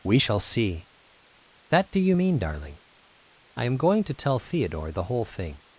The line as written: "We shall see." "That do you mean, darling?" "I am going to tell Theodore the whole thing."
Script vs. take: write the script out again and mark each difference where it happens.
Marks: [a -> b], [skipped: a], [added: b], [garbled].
"We shall see." "That do you mean, darling?" "I am going to tell Theodore the whole thing."